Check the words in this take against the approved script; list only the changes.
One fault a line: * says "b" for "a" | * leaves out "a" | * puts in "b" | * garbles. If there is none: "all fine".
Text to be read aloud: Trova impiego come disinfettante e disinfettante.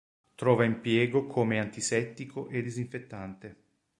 * says "antisettico" for "disinfettante"